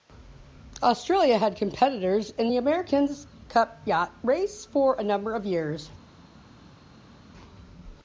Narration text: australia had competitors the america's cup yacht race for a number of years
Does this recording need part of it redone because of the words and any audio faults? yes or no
yes